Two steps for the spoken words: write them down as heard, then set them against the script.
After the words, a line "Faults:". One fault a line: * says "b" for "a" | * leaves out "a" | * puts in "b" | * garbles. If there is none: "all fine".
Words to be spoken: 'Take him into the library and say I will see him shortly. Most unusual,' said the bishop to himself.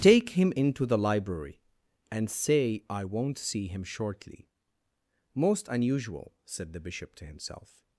'Take him into the library and say I won't see him shortly. Most unusual,' said the bishop to himself.
Faults:
* says "won't" for "will"